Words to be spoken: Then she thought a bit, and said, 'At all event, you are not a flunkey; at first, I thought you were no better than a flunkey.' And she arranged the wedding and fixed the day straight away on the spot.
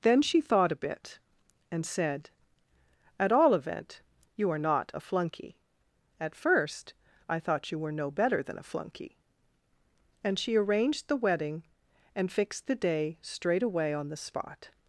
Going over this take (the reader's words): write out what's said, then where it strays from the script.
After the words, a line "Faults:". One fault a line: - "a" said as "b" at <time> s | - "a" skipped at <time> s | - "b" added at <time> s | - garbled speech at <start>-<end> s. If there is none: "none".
Then she thought a bit, and said, 'At all event, you are not a flunkey; at first, I thought you were no better than a flunkey.' And she arranged the wedding and fixed the day straight away on the spot.
Faults:
none